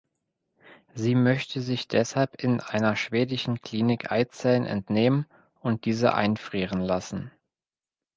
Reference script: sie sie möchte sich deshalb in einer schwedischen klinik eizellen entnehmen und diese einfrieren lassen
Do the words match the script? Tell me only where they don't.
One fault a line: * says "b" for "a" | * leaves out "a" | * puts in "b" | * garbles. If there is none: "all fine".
* leaves out "sie"